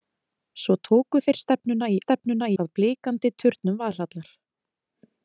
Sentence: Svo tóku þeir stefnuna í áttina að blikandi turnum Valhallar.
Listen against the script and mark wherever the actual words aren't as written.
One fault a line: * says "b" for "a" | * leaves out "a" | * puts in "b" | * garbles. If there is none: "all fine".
* says "stefnuna" for "áttina"